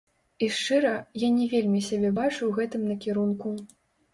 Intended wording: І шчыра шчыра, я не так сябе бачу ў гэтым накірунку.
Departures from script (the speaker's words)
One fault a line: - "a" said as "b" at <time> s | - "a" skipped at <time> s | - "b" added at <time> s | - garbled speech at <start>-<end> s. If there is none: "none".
- "шчыра" skipped at 0.9 s
- "так" said as "вельмі" at 1.6 s